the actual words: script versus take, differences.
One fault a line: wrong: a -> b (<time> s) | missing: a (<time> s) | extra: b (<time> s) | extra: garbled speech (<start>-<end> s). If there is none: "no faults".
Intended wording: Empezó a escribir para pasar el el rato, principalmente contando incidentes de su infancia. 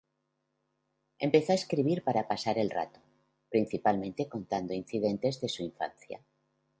missing: el (2.7 s)